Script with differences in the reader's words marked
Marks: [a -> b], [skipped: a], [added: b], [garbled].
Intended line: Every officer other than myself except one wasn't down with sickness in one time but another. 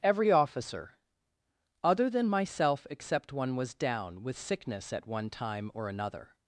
Every officer other than myself except one [wasn't -> was] down with sickness [in -> at] one time [but -> or] another.